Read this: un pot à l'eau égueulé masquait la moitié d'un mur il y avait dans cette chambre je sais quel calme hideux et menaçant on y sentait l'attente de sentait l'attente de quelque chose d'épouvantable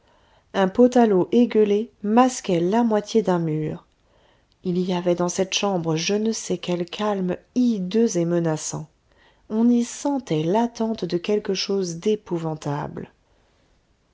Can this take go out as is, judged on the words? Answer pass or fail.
fail